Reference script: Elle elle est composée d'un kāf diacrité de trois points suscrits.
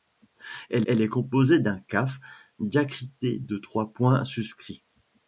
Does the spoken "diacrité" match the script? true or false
true